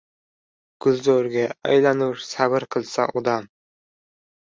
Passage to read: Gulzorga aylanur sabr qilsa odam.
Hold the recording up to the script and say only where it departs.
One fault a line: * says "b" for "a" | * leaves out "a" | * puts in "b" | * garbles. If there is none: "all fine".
all fine